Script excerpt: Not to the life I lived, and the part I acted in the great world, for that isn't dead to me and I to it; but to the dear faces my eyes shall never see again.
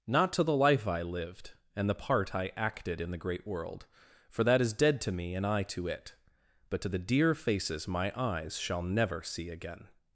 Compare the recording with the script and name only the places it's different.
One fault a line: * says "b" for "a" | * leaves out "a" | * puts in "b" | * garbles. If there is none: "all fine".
* says "is" for "isn't"